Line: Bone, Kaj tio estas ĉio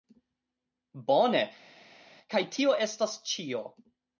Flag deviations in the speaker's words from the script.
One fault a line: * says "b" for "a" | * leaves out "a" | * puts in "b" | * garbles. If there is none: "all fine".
all fine